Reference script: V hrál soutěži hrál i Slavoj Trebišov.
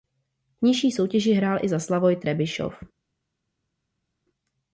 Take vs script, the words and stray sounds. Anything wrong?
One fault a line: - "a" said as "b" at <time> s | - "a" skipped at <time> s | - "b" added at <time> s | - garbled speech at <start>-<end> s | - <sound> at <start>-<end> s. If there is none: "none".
- "hrál" said as "nižší" at 0.7 s
- "za" added at 1.7 s